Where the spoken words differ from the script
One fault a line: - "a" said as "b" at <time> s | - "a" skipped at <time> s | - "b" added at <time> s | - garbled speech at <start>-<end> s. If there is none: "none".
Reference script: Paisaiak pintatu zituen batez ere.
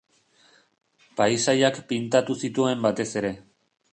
none